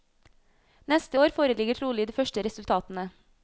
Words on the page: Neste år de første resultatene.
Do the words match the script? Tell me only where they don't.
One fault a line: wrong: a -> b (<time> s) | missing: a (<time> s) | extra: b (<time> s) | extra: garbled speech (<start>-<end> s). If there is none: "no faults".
extra: foreligger trolig (1.4 s)